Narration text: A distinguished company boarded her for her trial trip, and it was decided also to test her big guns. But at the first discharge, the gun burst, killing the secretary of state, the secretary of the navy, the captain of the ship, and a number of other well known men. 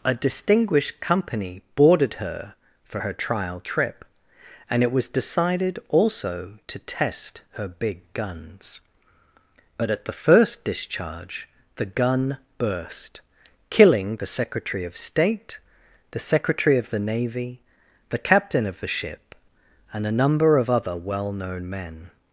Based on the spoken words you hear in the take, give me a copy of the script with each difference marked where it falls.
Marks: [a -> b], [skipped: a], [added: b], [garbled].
A distinguished company boarded her for her trial trip, and it was decided also to test her big guns. But at the first discharge, the gun burst, killing the secretary of state, the secretary of the navy, the captain of the ship, and a number of other well known men.